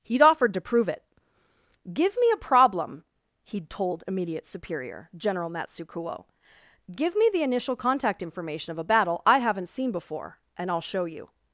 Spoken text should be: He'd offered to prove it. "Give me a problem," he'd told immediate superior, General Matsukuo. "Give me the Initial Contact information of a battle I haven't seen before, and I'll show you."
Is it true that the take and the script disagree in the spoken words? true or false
false